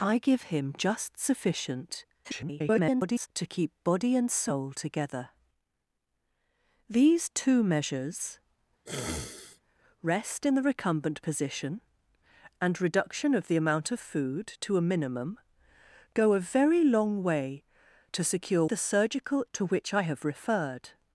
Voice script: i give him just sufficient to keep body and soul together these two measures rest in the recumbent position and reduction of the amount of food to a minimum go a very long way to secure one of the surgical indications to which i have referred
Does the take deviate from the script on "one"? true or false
true